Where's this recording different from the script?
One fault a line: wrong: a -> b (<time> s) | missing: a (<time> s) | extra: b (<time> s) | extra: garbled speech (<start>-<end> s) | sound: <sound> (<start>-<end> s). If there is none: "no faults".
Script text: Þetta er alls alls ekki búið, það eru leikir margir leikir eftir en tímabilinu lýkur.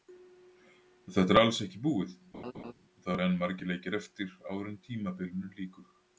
missing: alls (1.6 s)
sound: laugh (2.3-2.7 s)
wrong: leikir -> enn (3.3 s)
extra: áður (4.5 s)